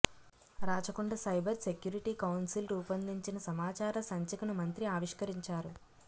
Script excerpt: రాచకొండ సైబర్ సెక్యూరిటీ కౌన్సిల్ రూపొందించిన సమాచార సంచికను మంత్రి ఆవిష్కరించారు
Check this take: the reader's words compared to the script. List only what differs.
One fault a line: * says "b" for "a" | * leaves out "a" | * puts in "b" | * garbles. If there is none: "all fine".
all fine